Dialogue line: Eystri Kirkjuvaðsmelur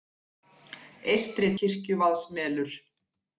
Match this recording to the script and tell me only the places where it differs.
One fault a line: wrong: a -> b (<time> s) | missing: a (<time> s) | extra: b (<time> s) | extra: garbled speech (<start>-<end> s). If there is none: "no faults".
no faults